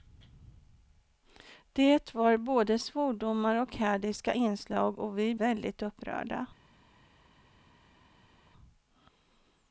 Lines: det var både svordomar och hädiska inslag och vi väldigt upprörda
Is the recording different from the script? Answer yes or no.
no